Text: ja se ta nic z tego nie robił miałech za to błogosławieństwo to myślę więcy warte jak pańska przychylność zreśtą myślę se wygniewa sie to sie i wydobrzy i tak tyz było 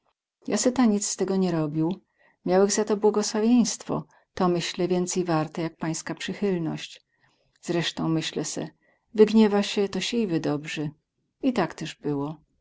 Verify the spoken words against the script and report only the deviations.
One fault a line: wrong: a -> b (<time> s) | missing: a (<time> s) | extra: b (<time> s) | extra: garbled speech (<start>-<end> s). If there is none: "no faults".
no faults